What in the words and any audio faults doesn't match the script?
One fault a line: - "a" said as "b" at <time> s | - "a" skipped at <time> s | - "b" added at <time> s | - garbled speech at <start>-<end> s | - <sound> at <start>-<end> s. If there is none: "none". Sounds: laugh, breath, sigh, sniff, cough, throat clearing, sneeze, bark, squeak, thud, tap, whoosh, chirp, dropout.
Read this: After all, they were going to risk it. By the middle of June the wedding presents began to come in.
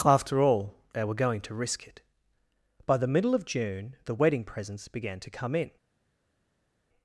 none